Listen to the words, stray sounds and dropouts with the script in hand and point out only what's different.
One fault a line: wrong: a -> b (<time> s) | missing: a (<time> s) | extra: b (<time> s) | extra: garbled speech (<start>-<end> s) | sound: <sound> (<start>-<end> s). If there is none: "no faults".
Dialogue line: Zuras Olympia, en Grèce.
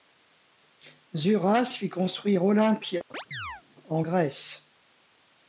extra: fit construire (1.8 s)
sound: chirp (3.1-3.6 s)